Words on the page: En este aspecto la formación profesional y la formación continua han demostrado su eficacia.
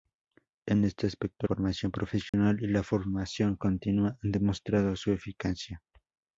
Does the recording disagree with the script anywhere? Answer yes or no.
yes